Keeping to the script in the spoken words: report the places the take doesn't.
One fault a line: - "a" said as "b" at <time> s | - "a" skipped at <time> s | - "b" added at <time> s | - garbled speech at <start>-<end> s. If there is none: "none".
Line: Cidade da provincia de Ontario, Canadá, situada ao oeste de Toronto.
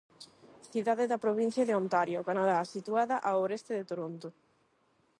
none